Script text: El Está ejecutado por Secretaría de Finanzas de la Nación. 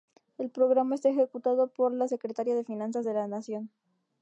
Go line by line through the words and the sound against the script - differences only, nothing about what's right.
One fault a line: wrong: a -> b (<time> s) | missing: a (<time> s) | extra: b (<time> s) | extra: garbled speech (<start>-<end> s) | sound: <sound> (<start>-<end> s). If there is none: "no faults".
extra: Programa (0.5 s)
extra: la (1.9 s)